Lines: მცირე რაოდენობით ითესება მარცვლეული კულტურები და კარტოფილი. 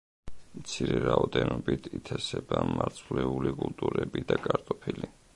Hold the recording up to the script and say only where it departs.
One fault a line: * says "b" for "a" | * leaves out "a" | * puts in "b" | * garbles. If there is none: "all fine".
all fine